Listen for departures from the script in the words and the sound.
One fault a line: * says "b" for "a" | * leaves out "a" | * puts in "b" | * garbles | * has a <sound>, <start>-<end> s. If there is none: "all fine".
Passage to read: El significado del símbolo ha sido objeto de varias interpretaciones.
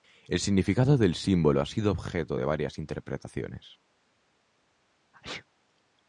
* has a sneeze, 5.1-5.5 s